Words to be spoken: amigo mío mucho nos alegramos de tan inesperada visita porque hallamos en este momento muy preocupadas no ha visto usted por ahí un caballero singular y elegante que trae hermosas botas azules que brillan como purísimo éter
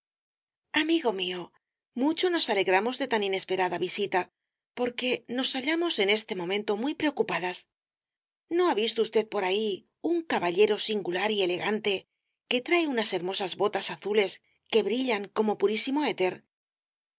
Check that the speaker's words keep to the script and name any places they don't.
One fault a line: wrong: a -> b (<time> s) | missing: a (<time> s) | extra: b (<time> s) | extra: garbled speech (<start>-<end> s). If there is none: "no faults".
extra: nos (5.4 s)
extra: unas (12.9 s)